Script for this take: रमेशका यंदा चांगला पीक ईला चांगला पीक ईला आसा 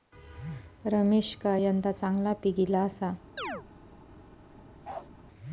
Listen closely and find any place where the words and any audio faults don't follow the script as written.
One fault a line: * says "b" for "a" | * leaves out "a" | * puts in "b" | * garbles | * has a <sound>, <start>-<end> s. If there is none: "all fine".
* leaves out "चांगला पीक ईला"
* has a chirp, 3.4-3.7 s
* has a bark, 4.8-5.1 s